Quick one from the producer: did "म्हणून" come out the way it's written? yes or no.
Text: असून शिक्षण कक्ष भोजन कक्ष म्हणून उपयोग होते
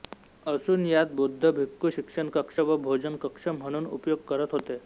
yes